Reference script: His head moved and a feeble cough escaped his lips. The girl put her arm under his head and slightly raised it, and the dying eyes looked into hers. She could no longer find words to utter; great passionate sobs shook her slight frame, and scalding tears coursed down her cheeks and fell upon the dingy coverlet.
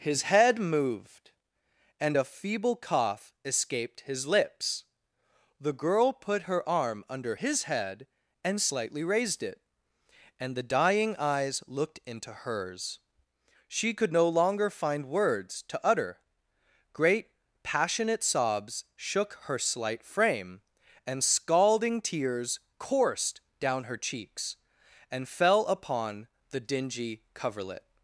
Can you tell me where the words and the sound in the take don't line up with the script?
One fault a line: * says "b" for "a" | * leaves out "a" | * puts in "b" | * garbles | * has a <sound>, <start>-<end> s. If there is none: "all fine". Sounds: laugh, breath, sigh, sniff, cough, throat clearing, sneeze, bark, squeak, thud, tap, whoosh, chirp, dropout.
all fine